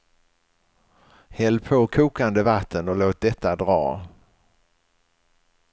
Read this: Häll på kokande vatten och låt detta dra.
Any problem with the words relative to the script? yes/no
no